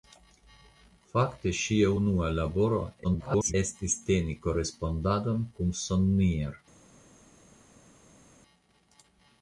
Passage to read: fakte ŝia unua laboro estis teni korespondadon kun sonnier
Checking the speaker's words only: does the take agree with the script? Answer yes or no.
no